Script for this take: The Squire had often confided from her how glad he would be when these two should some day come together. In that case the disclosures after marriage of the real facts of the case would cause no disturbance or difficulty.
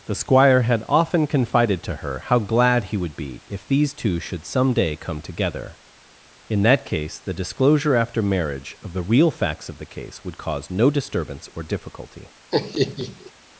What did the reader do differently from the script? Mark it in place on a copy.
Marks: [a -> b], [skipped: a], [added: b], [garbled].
The Squire had often confided [from -> to] her how glad he would be [when -> if] these two should some day come together. In that case the [disclosures -> disclosure] after marriage of the real facts of the case would cause no disturbance or difficulty.